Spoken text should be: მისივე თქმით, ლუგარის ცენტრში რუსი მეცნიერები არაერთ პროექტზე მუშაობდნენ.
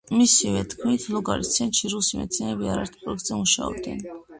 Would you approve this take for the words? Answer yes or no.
yes